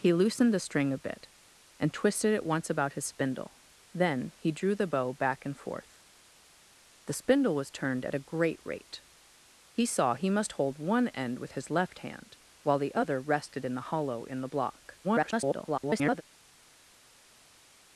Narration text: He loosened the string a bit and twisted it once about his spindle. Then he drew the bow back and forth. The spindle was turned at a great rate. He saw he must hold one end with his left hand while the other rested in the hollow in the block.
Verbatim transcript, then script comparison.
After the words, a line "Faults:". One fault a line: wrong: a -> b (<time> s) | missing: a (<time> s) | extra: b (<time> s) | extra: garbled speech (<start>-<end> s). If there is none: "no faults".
He loosened the string a bit and twisted it once about his spindle. Then he drew the bow back and forth. The spindle was turned at a great rate. He saw he must hold one end with his left hand while the other rested in the hollow in the block. [garbled]
Faults:
extra: garbled speech (15.0-16.2 s)